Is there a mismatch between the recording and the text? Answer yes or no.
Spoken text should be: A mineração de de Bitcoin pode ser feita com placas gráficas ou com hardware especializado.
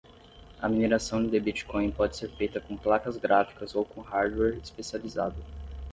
yes